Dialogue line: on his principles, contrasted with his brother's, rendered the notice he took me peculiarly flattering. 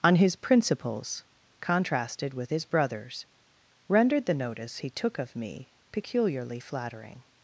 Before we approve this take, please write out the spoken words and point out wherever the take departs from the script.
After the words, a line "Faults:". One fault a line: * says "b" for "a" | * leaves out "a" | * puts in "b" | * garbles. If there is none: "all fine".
on his principles, contrasted with his brother's, rendered the notice he took of me peculiarly flattering.
Faults:
* puts in "of"